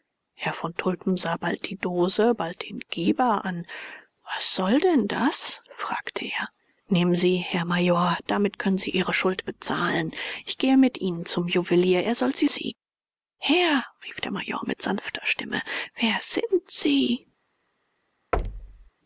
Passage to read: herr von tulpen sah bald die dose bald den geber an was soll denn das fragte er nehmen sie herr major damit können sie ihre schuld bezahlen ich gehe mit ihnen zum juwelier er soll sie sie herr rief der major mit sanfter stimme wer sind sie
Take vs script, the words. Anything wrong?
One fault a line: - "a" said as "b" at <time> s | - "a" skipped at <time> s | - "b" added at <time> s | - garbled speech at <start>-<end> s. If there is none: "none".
none